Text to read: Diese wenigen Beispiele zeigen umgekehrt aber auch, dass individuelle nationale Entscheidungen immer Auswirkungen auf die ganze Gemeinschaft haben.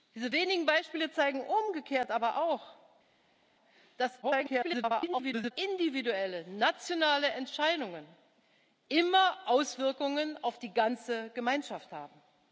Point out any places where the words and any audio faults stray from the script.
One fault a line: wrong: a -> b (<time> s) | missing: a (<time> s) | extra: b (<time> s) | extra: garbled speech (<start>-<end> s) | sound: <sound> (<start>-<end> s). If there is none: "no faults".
extra: garbled speech (4.2-5.5 s)